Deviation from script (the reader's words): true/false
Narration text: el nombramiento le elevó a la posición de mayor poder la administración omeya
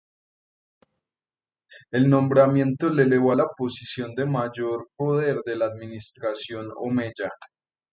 true